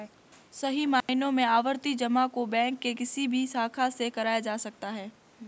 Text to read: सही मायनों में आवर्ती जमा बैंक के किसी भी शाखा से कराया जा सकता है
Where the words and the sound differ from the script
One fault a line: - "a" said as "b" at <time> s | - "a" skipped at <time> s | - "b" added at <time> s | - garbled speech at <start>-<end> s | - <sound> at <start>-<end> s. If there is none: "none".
- dropout at 1.0-1.1 s
- "को" added at 2.3 s